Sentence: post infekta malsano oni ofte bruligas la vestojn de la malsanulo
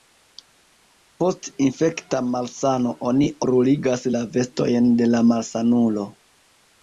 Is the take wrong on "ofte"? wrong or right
wrong